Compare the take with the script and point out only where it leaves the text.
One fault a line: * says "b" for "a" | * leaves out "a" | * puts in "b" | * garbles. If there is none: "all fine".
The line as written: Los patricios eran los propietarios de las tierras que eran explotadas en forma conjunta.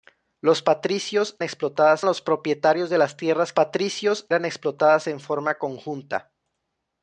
* says "explotadas" for "eran"
* says "patricios" for "que"